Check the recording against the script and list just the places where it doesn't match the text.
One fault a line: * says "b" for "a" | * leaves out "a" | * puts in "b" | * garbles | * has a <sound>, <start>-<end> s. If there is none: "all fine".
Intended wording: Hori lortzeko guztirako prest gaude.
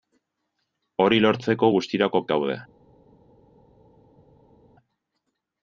* leaves out "prest"